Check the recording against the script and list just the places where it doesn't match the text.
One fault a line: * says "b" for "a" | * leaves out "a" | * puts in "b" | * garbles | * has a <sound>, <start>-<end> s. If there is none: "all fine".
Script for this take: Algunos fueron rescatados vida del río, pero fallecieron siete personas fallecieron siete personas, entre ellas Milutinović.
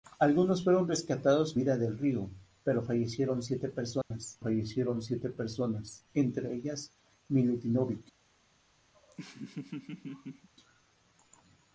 * has a dropout, 4.0-4.1 s
* has a laugh, 8.9-10.5 s